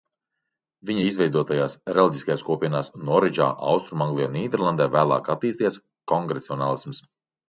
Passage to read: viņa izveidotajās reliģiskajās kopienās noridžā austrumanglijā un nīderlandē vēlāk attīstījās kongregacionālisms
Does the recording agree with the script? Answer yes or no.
yes